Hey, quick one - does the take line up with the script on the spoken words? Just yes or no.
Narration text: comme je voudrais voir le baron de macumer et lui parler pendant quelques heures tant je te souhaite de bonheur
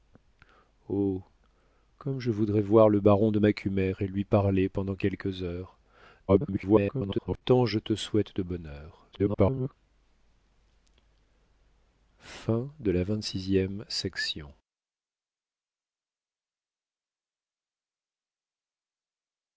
no